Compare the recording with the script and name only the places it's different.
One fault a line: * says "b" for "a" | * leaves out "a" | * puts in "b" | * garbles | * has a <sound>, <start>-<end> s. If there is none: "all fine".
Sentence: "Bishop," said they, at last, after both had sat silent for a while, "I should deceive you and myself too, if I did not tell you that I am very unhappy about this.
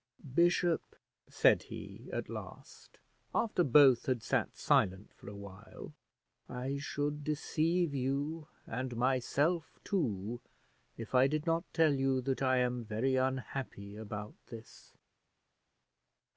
* says "he" for "they"